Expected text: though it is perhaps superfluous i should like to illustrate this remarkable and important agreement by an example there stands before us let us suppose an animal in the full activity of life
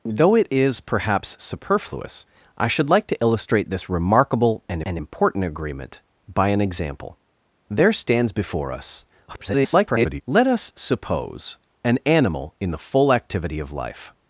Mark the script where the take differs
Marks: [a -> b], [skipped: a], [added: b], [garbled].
though it is perhaps superfluous i should like to illustrate this remarkable and [added: and] important agreement by an example there stands before us [garbled] let us suppose an animal in the full activity of life